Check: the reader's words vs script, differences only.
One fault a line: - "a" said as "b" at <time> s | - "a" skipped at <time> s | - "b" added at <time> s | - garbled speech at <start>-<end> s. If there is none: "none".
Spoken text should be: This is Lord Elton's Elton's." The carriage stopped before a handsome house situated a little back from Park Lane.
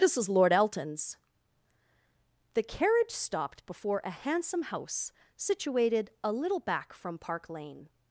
- "Elton's" skipped at 1.2 s